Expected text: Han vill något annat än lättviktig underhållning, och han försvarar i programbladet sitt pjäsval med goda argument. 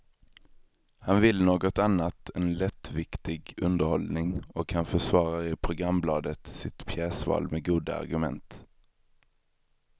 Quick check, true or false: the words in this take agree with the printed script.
true